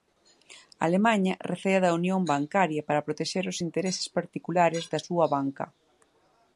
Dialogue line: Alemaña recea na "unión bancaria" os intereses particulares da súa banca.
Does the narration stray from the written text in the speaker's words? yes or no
yes